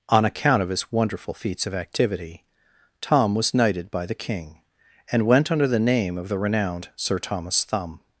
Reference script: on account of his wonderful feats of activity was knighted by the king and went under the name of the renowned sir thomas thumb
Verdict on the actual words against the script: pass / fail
fail